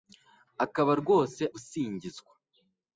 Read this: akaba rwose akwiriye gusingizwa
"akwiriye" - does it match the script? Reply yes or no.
no